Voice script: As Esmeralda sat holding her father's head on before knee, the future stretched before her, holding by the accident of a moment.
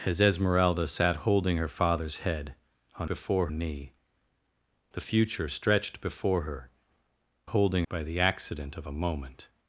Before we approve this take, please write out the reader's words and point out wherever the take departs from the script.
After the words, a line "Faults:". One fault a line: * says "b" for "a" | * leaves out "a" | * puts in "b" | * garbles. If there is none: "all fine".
As Esmeralda sat holding her father's head on before knee, the future stretched before her, holding by the accident of a moment.
Faults:
all fine